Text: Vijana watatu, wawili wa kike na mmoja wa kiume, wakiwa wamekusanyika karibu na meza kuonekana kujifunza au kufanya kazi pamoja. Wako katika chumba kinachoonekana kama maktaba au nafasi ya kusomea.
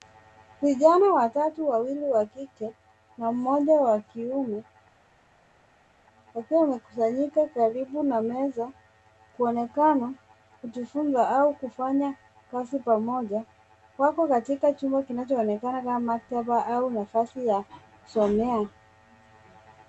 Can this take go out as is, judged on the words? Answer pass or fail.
pass